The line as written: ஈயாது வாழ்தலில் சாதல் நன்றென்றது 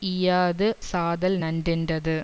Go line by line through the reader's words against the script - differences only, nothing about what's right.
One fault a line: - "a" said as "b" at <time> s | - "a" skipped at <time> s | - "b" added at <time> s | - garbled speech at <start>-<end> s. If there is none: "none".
- "வாழ்தலில்" skipped at 0.7 s